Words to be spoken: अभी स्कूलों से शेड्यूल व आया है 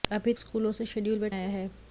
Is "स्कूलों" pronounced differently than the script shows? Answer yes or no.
no